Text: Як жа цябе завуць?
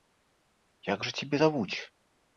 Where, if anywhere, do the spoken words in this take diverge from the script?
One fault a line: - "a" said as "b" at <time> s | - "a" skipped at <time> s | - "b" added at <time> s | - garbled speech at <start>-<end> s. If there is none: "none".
none